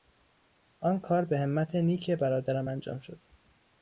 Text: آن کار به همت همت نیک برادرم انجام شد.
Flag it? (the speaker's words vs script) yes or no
yes